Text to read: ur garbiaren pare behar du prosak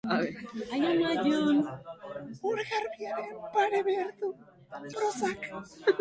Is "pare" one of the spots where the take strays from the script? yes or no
no